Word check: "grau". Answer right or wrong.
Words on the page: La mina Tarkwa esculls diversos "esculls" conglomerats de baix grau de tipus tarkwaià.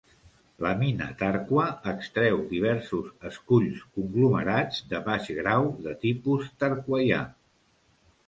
right